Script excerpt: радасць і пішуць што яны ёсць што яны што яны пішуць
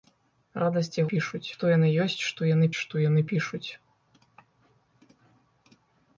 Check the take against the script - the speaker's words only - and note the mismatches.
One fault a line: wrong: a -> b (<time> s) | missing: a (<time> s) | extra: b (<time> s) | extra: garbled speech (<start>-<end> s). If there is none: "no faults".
no faults